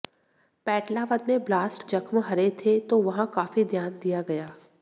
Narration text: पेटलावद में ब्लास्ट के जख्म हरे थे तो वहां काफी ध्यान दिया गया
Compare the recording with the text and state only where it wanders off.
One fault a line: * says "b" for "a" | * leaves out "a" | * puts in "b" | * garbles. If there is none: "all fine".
* leaves out "के"